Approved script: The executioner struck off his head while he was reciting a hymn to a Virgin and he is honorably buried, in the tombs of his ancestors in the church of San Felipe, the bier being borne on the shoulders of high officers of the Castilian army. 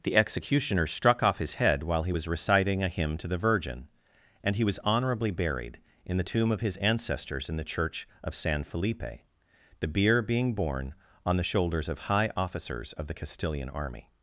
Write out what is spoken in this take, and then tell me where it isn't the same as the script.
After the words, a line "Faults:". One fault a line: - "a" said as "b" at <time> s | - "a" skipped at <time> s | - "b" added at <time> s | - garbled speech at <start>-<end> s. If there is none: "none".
The executioner struck off his head while he was reciting a hymn to the Virgin and he was honorably buried, in the tomb of his ancestors in the church of San Felipe, the bier being borne on the shoulders of high officers of the Castilian army.
Faults:
- "a" said as "the" at 3.3 s
- "is" said as "was" at 4.6 s
- "tombs" said as "tomb" at 6.2 s